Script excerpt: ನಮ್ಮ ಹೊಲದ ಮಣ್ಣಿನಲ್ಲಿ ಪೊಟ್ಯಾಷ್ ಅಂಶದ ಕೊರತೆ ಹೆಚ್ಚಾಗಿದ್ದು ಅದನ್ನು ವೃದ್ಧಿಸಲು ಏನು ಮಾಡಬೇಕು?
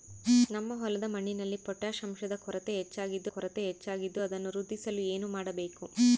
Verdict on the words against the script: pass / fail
fail